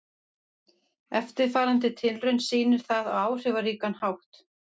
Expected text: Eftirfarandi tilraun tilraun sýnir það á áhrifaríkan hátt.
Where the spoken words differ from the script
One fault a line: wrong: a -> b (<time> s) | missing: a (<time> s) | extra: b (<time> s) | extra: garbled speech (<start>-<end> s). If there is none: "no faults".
missing: tilraun (2.4 s)